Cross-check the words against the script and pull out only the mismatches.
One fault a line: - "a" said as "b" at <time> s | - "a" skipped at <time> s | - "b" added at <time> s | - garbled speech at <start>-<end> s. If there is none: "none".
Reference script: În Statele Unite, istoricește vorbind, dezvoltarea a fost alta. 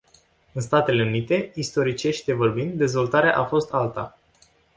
none